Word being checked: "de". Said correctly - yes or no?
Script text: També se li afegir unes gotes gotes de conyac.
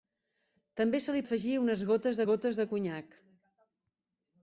yes